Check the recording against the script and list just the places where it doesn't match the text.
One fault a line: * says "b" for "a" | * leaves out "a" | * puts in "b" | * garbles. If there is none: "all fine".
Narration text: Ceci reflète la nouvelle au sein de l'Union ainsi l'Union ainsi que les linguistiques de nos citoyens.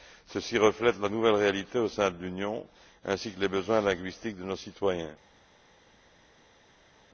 * puts in "réalité"
* leaves out "l'Union ainsi"
* puts in "besoins"